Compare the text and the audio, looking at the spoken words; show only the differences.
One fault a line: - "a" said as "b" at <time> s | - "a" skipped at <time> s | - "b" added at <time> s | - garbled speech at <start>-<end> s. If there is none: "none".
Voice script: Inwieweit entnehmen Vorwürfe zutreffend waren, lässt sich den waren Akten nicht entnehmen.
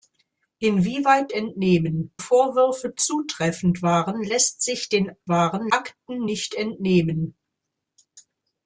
none